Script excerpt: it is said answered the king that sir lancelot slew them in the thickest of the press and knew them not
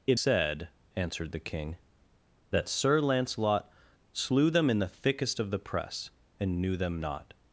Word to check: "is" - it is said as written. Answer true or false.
false